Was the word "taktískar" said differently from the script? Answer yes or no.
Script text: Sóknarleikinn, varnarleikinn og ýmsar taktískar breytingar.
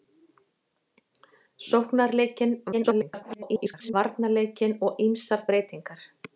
yes